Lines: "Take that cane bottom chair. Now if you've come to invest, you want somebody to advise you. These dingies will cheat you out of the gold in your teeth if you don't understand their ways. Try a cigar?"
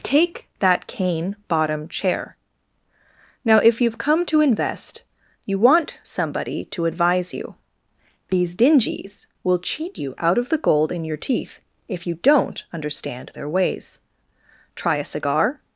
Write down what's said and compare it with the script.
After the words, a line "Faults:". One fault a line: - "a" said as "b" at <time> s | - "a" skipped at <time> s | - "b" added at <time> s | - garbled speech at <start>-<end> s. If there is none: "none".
"Take that cane bottom chair. Now if you've come to invest, you want somebody to advise you. These dingies will cheat you out of the gold in your teeth if you don't understand their ways. Try a cigar?"
Faults:
none